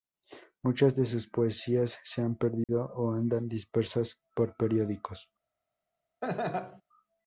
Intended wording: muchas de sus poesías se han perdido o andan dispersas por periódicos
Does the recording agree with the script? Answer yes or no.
yes